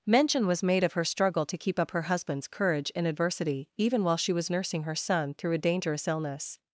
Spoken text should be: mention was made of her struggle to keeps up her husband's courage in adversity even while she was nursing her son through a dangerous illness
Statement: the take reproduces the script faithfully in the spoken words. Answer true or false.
false